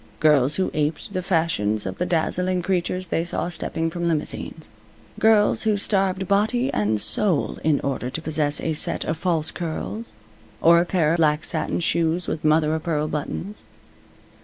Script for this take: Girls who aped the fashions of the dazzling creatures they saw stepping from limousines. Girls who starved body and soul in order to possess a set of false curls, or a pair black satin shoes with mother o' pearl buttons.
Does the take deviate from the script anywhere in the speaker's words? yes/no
no